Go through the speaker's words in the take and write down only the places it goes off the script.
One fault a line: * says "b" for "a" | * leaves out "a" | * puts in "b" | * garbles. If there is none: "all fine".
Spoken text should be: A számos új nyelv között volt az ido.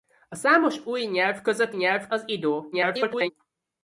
* says "nyelv" for "volt"
* garbles